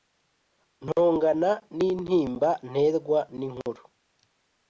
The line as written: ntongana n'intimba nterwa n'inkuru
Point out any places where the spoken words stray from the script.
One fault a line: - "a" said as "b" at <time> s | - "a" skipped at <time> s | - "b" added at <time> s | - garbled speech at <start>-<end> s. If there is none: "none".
none